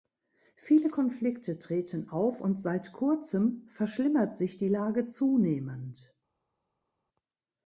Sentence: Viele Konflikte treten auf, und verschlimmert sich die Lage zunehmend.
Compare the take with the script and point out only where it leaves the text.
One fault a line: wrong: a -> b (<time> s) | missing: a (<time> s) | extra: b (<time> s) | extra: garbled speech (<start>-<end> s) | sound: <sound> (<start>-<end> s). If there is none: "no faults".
extra: seit Kurzem (2.6 s)